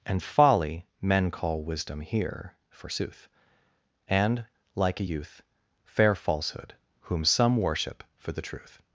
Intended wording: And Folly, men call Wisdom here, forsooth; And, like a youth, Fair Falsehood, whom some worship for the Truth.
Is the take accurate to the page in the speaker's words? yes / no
yes